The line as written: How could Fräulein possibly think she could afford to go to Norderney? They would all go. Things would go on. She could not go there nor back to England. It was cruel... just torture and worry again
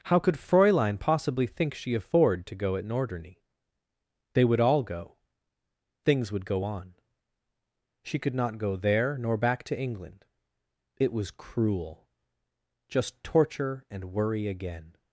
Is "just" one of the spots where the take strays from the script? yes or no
no